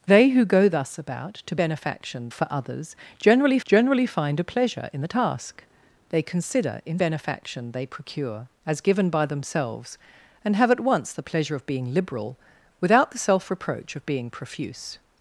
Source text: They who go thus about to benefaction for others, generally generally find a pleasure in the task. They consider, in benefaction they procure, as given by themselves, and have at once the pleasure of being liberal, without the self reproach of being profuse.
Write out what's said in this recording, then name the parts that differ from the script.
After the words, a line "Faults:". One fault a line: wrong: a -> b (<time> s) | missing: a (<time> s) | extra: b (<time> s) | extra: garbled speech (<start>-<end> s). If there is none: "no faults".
They who go thus about to benefaction for others, generally generally find a pleasure in the task. They consider, in benefaction they procure, as given by themselves, and have at once the pleasure of being liberal, without the self reproach of being profuse.
Faults:
no faults